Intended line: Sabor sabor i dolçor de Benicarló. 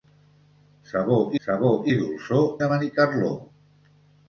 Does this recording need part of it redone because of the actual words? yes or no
no